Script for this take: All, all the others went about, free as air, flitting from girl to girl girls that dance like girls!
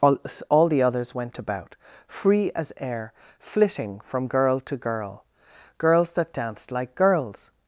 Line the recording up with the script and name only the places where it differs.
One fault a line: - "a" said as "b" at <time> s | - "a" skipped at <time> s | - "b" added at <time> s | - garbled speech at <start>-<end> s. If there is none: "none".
- "dance" said as "danced" at 6.3 s